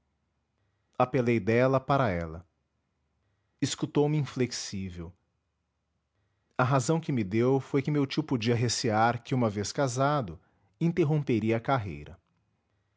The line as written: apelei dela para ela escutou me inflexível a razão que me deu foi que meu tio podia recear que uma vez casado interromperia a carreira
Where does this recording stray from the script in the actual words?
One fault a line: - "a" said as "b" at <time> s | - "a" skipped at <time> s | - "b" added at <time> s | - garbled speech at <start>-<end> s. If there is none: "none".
none